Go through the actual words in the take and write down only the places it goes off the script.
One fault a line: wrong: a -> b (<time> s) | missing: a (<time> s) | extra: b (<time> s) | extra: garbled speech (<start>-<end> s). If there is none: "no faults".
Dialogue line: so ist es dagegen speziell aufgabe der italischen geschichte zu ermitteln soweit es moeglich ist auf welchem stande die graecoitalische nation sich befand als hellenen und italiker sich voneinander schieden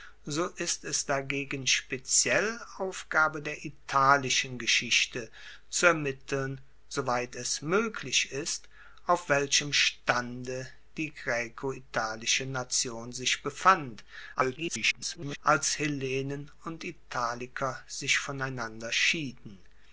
extra: garbled speech (14.3-15.4 s)